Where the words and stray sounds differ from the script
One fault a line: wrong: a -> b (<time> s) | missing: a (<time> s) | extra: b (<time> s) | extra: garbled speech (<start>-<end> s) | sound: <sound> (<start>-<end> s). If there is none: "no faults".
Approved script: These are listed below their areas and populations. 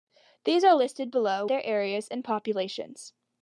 no faults